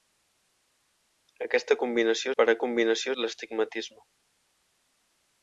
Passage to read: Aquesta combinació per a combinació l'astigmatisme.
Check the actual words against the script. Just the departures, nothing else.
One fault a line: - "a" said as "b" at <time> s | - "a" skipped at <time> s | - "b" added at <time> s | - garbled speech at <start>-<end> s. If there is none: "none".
none